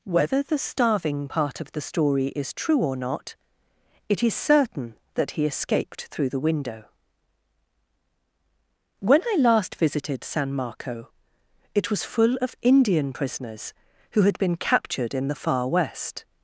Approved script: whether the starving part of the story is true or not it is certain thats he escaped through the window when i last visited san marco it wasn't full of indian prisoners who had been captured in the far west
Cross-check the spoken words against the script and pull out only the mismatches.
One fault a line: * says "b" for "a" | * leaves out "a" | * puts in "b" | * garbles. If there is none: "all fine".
* says "that" for "thats"
* says "was" for "wasn't"